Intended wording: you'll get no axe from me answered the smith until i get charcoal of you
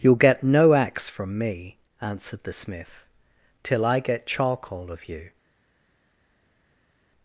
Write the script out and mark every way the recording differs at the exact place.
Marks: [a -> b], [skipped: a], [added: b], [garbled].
you'll get no axe from me answered the smith [until -> till] i get charcoal of you